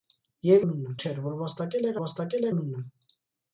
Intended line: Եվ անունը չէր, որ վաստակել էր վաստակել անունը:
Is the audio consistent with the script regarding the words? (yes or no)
yes